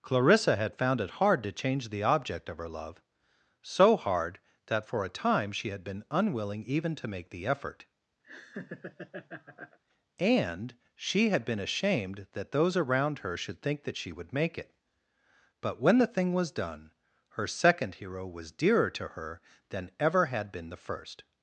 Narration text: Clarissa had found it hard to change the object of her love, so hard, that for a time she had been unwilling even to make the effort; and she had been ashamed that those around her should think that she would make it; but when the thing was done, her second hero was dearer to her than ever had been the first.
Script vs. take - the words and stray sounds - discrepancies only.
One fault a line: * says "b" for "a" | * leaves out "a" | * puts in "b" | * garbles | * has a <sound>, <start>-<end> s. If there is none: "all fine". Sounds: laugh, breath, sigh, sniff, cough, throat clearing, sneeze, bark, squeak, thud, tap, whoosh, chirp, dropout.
* has a laugh, 8.2-9.8 s